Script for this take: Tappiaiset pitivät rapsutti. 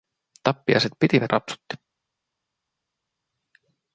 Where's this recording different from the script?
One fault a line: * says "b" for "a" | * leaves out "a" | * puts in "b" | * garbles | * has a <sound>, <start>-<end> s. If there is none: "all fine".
all fine